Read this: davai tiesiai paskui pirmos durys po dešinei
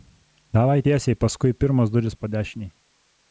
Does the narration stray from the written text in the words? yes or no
no